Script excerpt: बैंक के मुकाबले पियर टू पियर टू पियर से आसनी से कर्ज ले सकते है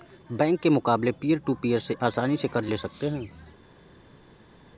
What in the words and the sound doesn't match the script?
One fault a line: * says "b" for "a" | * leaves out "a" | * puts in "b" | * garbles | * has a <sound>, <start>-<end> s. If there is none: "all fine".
* leaves out "टू पियर"